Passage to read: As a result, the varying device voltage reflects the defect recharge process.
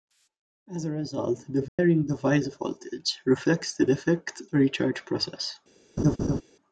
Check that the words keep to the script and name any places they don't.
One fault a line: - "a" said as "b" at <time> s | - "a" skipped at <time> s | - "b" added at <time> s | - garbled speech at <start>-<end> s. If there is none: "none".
none